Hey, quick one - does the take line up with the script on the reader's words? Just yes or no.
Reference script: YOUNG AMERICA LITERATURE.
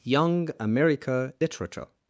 yes